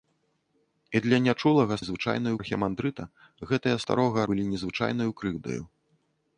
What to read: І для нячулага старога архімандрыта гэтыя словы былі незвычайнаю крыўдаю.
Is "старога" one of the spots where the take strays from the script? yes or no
yes